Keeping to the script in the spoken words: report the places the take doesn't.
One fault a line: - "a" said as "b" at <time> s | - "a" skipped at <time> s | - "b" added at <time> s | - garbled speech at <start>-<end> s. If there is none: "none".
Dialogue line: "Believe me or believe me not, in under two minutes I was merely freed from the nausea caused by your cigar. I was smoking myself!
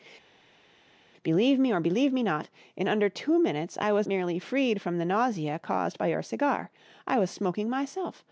none